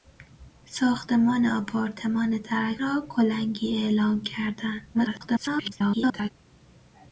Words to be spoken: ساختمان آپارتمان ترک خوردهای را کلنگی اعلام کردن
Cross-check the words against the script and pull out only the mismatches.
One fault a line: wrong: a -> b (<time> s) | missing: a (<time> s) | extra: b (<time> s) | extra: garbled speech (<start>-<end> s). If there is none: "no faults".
missing: خوردهای (2.8 s)
extra: garbled speech (4.9-6.3 s)